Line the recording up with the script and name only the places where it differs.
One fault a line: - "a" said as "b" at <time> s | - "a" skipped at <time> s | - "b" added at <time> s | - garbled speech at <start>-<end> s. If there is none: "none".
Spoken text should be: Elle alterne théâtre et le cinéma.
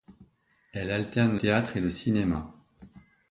none